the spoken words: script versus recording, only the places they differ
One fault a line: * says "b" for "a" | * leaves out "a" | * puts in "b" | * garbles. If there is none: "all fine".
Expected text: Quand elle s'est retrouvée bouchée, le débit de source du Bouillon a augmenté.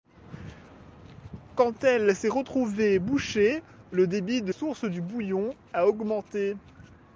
all fine